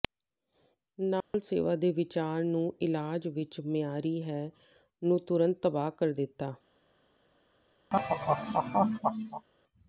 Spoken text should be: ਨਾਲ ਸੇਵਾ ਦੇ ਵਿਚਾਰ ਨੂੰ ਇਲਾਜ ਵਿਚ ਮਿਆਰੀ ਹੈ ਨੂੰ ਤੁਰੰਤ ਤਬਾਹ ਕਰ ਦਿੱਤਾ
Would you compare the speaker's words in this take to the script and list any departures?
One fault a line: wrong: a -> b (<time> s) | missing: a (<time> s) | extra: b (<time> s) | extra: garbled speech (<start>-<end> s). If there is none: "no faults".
no faults